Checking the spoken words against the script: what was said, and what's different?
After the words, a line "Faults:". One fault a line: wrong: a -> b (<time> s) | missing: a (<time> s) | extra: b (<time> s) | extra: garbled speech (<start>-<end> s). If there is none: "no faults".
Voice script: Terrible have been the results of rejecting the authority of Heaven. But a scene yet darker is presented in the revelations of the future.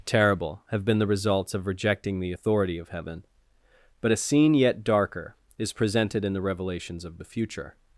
Terrible have been the results of rejecting the authority of Heaven. But a scene yet darker is presented in the revelations of the future.
Faults:
no faults